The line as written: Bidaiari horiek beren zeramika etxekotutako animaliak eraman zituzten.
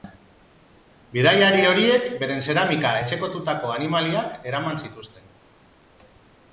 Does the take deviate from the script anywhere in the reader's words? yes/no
no